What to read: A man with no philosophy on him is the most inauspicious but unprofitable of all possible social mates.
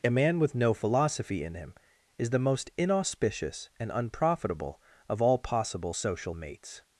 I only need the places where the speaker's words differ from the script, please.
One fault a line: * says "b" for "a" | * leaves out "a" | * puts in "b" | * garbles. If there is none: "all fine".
* says "in" for "on"
* says "and" for "but"